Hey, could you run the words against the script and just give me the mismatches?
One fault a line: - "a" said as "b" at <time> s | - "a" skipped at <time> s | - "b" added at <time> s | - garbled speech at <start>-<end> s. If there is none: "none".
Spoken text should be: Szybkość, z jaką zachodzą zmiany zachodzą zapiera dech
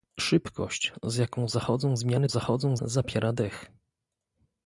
none